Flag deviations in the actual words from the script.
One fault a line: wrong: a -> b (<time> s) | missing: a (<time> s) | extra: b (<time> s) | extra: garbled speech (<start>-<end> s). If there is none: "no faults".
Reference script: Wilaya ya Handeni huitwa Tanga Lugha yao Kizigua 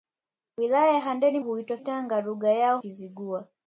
no faults